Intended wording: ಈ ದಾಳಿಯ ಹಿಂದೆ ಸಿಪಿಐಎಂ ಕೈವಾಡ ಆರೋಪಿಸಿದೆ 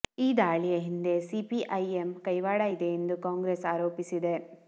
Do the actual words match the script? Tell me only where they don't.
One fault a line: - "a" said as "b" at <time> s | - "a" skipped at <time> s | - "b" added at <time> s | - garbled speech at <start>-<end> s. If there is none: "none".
- "ಇದೆ ಎಂದು ಕಾಂಗ್ರೆಸ್" added at 2.8 s